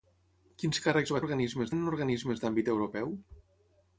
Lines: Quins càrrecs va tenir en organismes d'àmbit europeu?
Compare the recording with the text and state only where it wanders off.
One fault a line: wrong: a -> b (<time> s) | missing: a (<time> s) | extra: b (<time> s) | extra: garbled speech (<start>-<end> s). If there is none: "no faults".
wrong: tenir -> organismes (1.3 s)